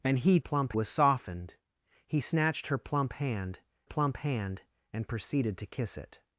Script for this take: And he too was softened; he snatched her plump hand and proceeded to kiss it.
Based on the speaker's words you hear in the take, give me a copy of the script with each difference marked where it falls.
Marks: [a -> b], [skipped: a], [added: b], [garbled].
And he [too -> plump] was softened; he snatched her plump hand [added: plump hand] and proceeded to kiss it.